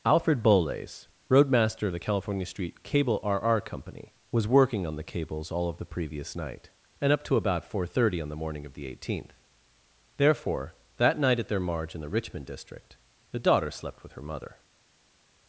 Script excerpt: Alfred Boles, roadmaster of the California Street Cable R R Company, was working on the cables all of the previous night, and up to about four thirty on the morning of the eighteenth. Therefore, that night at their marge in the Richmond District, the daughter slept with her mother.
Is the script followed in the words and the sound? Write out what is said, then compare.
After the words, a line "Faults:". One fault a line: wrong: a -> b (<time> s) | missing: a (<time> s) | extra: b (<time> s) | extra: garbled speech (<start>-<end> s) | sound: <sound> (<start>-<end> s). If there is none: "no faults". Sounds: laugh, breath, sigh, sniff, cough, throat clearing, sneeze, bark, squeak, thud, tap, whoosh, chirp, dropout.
Alfred Boles, roadmaster of the California Street Cable R R Company, was working on the cables all of the previous night, and up to about four thirty on the morning of the eighteenth. Therefore, that night at their marge in the Richmond District, the daughter slept with her mother.
Faults:
no faults